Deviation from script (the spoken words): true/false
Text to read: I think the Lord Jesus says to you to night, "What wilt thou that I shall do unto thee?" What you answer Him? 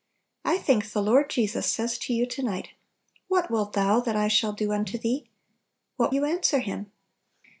false